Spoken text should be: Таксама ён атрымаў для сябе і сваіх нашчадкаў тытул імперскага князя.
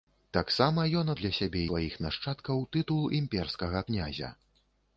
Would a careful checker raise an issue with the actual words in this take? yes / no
yes